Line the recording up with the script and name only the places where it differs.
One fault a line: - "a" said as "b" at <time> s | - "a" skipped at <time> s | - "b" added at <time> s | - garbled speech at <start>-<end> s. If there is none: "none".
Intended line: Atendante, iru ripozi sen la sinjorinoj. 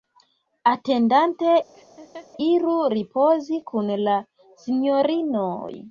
- "sen" said as "kun" at 3.7 s